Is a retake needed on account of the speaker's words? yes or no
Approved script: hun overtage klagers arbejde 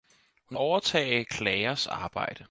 no